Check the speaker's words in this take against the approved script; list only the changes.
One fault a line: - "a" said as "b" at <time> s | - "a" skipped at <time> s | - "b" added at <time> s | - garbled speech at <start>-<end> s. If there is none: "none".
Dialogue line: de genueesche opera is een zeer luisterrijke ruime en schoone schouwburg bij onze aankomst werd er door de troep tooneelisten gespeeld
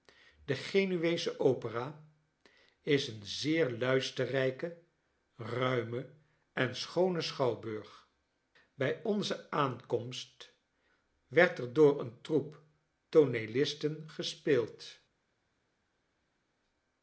- "de" said as "een" at 12.0 s